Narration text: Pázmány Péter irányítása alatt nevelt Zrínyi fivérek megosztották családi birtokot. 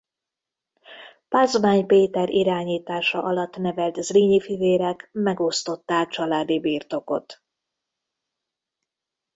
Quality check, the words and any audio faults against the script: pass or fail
pass